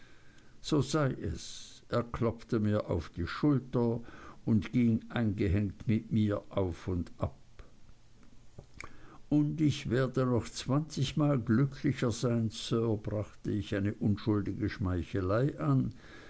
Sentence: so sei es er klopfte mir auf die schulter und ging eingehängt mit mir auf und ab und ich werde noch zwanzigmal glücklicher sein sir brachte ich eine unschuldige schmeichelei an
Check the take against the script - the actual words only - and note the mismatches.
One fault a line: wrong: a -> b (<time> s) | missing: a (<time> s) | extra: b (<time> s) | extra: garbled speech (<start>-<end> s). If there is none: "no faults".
no faults